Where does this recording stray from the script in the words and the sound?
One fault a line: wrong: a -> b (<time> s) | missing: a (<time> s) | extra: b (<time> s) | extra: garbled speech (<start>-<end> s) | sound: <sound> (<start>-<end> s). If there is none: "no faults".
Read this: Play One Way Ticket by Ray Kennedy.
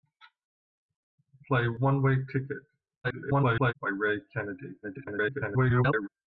extra: garbled speech (3.0-3.7 s)
extra: garbled speech (4.8-6.1 s)